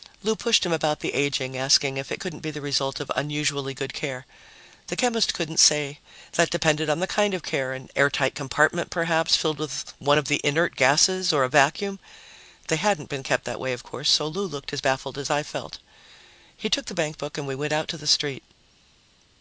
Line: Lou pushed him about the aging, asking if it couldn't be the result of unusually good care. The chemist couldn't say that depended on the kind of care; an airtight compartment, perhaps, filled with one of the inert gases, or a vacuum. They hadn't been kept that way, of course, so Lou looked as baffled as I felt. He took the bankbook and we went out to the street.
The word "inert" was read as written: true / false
true